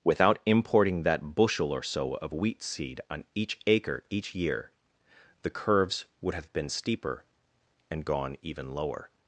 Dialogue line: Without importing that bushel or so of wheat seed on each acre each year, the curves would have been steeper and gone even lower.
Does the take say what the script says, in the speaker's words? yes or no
yes